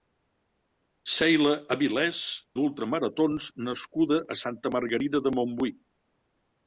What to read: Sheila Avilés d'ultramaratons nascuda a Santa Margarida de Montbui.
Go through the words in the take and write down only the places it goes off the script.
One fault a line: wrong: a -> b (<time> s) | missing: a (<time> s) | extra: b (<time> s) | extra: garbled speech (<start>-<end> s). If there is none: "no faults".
no faults